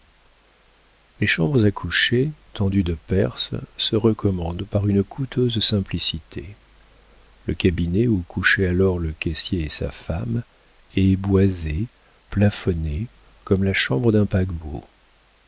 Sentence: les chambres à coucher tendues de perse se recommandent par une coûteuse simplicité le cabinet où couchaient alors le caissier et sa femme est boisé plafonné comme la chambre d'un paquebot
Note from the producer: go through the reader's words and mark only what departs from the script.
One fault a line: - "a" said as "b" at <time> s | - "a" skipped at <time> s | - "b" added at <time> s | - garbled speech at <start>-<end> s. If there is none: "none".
none